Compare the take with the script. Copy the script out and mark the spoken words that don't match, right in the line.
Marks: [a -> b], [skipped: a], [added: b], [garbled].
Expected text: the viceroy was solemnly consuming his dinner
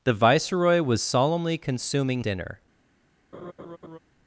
the viceroy was solemnly consuming [skipped: his] dinner